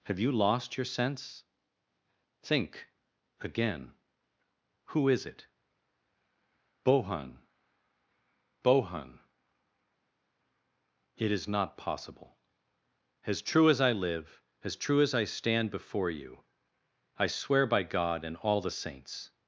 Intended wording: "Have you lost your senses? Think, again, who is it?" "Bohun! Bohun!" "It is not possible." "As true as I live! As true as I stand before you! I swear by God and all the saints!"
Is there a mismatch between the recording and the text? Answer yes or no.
yes